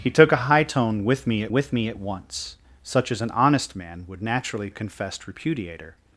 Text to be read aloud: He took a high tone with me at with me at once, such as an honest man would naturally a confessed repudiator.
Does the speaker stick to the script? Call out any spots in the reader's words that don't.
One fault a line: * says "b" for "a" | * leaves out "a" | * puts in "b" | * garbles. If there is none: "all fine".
all fine